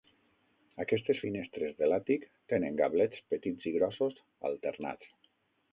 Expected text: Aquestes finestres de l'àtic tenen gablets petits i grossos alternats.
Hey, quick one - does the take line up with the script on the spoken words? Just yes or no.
yes